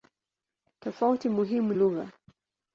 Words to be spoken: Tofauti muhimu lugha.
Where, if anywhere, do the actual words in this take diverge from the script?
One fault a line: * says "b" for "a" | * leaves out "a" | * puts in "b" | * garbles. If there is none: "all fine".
all fine